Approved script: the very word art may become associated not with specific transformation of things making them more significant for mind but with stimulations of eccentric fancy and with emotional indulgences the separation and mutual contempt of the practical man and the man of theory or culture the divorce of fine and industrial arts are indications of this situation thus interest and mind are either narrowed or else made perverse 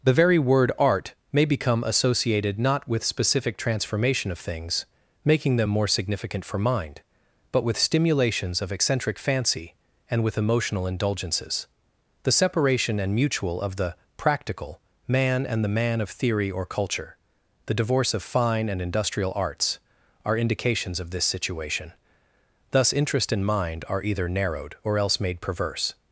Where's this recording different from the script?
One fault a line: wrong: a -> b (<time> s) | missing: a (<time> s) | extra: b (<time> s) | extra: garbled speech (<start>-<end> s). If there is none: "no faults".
missing: contempt (13.6 s)